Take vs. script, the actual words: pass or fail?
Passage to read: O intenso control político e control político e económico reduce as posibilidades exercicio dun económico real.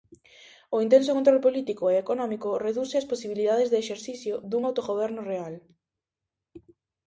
fail